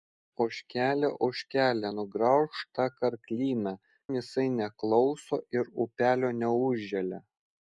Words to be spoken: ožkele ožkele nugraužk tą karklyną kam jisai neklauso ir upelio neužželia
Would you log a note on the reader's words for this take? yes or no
yes